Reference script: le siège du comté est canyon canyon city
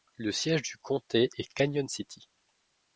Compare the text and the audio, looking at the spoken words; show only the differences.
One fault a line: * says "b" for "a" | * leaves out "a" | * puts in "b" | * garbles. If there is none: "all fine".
* leaves out "canyon"